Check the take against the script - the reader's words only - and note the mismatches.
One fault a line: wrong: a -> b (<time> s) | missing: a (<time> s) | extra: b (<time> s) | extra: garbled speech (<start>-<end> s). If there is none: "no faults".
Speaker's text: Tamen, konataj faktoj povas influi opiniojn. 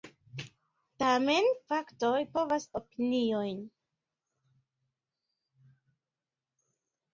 missing: konataj (1.5 s)
missing: influi (2.7 s)